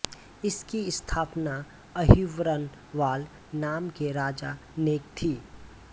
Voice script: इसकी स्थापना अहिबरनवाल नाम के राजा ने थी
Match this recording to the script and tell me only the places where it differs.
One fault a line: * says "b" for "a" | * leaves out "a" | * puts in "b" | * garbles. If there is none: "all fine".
all fine